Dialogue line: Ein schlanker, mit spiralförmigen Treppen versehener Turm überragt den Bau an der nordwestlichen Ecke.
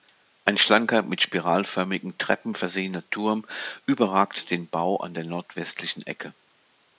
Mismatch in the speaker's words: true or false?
false